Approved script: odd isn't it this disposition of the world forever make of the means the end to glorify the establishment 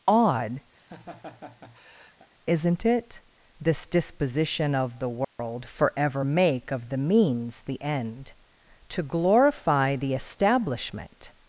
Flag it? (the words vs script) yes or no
no